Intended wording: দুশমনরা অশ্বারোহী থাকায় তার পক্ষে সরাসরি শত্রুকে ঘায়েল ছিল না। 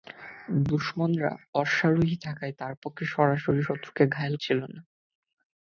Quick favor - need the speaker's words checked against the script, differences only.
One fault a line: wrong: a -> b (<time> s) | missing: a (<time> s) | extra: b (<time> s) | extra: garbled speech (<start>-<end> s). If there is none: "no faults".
no faults